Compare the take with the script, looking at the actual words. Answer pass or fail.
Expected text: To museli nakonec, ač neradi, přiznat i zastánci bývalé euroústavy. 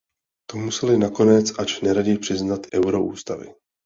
fail